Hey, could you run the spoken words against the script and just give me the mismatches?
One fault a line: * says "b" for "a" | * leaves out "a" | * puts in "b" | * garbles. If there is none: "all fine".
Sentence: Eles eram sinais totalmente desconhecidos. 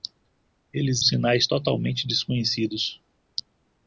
* leaves out "eram"